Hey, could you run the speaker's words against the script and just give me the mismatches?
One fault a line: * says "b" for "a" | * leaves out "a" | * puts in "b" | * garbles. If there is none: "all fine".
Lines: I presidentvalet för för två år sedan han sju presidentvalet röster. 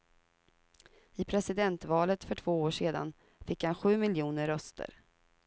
* leaves out "för"
* puts in "fick"
* says "miljoner" for "presidentvalet"